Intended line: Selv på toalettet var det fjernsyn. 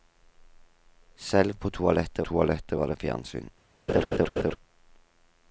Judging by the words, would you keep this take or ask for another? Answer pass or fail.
fail